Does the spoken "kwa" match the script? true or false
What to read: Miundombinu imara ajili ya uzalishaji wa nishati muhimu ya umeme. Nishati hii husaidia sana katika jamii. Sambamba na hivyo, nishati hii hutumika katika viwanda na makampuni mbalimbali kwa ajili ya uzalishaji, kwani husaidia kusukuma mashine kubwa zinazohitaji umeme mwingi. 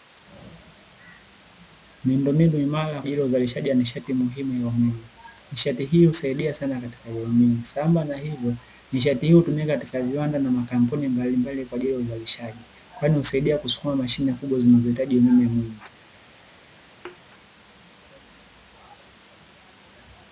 true